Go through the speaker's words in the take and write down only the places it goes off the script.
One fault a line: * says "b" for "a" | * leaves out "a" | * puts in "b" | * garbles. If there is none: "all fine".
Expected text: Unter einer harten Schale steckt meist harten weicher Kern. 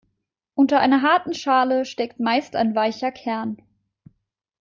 * says "ein" for "harten"